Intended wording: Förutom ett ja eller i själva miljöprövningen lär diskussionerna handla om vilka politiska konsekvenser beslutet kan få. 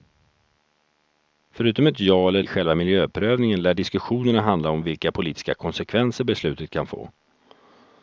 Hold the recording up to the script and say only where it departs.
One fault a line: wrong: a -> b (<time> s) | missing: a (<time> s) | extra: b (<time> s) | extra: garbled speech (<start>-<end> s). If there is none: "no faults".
no faults